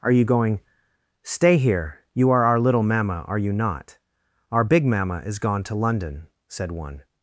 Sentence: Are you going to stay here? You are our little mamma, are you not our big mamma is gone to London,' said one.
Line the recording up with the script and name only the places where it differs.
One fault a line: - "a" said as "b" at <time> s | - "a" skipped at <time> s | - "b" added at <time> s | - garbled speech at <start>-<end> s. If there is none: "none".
- "to" skipped at 0.6 s